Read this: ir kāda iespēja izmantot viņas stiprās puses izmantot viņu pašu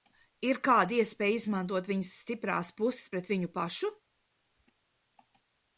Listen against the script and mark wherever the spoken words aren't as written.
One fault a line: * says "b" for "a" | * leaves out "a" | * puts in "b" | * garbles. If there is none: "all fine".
* says "pret" for "izmantot"